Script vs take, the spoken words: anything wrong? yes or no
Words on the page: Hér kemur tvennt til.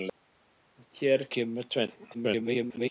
yes